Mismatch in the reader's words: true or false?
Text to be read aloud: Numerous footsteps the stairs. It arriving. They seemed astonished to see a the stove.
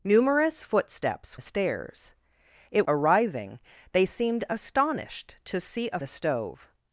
false